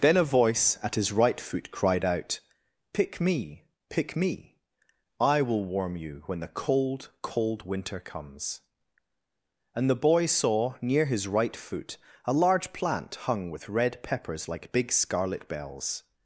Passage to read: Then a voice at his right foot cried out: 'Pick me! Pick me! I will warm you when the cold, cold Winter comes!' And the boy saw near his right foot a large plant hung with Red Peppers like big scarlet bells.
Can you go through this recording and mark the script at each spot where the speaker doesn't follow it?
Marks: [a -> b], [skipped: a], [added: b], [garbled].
Then a voice at his right foot cried out: 'Pick me! Pick me! I will warm you when the cold, cold Winter comes!' And the boy saw near his right foot a large plant hung with Red Peppers like big scarlet bells.